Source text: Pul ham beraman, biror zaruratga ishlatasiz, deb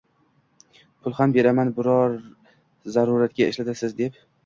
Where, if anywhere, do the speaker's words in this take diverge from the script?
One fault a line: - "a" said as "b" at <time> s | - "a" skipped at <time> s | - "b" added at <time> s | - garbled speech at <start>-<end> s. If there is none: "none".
none